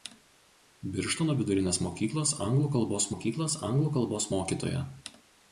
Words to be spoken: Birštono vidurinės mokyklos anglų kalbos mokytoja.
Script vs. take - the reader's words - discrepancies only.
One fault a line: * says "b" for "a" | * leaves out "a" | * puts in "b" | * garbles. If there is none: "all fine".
* puts in "mokyklos anglų kalbos"